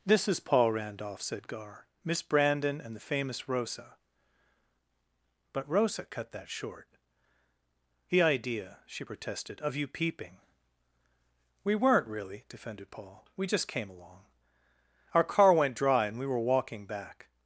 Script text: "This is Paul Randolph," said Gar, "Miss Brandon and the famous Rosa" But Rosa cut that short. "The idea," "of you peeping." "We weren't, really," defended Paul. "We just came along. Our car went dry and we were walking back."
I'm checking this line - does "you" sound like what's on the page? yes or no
yes